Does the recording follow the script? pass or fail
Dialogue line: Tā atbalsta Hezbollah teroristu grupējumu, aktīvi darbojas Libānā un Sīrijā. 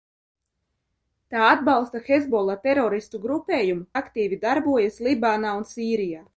pass